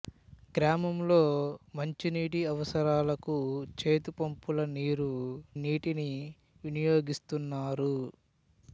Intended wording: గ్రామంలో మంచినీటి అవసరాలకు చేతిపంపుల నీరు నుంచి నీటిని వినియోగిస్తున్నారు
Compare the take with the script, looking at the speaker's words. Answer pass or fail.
fail